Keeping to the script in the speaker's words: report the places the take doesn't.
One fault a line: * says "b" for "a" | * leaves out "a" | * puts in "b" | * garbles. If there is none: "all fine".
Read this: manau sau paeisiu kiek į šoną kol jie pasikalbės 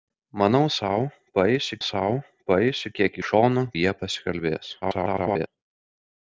* puts in "sau paeisiu"
* leaves out "kol"
* garbles